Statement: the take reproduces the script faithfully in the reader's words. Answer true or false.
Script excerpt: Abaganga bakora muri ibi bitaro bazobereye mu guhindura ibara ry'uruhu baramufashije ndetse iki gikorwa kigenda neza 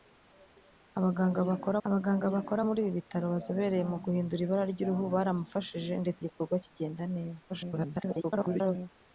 false